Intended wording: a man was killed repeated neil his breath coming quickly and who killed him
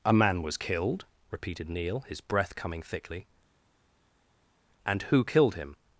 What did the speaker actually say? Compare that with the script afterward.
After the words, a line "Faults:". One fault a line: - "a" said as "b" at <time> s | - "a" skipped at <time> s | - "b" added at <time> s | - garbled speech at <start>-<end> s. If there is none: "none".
a man was killed repeated neil his breath coming thickly and who killed him
Faults:
- "quickly" said as "thickly" at 2.8 s